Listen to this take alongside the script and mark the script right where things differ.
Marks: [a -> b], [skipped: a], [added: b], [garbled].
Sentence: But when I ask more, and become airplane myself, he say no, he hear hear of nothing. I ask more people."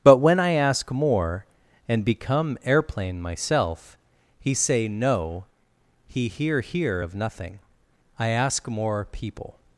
But when I ask more, and become airplane myself, he say no, he hear hear of nothing. I ask more people."